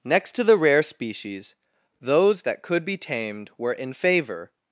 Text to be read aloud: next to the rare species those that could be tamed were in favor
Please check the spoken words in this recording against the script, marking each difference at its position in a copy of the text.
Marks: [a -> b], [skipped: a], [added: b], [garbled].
next to the rare species those that could be tamed were in favor